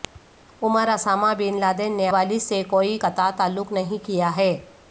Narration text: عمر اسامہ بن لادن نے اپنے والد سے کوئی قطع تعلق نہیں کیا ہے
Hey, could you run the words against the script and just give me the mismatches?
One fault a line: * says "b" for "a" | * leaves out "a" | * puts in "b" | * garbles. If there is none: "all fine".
* leaves out "اپنے"